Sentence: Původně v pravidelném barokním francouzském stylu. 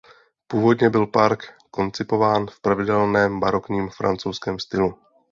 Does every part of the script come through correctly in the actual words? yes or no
no